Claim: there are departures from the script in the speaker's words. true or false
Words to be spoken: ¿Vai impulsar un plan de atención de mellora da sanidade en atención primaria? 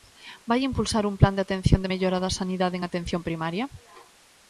false